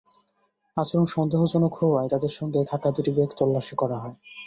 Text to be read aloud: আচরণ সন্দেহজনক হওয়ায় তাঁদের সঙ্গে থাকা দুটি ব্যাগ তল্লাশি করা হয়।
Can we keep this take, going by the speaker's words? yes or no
yes